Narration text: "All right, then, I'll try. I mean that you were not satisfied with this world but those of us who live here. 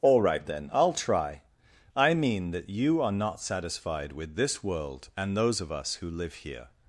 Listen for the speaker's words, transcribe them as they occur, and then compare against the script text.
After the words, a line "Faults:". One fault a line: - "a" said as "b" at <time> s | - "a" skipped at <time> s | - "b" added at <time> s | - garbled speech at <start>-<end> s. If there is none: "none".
"All right, then, I'll try. I mean that you are not satisfied with this world and those of us who live here.
Faults:
- "were" said as "are" at 3.0 s
- "but" said as "and" at 5.2 s